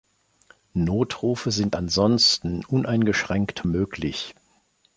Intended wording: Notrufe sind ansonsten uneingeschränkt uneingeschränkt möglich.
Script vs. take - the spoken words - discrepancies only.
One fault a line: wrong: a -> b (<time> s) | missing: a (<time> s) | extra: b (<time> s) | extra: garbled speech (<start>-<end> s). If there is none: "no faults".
missing: uneingeschränkt (3.7 s)